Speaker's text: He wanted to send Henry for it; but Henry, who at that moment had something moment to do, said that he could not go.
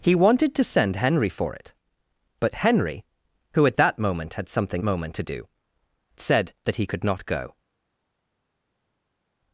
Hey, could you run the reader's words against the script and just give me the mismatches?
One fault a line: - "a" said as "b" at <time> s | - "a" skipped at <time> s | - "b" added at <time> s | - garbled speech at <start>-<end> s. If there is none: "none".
none